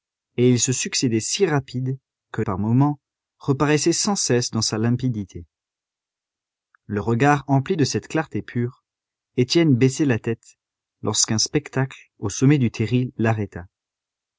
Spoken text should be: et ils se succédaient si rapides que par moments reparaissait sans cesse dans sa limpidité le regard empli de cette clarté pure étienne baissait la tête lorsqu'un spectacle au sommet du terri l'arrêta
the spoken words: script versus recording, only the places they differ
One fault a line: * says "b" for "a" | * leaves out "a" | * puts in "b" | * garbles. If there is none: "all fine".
all fine